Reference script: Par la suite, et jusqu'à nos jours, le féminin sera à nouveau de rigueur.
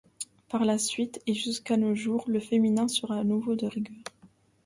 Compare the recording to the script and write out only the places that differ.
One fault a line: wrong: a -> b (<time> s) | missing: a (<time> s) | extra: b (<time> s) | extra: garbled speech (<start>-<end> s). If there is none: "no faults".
no faults